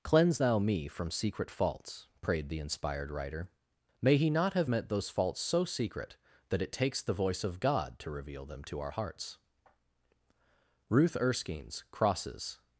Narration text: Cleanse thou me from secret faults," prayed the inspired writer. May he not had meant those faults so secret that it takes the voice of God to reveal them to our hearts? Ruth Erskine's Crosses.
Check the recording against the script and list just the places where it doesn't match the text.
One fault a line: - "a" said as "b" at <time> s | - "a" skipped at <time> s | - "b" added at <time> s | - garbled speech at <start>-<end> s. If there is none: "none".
- "had" said as "have" at 4.5 s